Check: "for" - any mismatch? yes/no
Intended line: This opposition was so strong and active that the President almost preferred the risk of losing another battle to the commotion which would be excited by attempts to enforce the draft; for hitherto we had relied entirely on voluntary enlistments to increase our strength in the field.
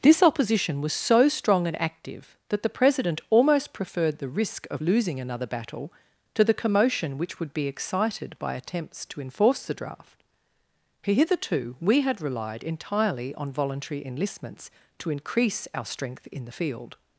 yes